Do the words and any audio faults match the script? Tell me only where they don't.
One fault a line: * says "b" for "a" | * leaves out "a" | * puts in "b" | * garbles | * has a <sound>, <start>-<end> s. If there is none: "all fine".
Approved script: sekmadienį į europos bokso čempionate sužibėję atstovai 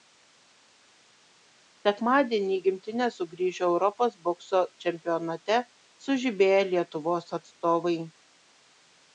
* puts in "gimtinę sugrįžo"
* puts in "lietuvos"